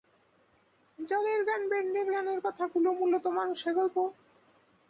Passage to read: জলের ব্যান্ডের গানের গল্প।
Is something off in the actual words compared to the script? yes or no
yes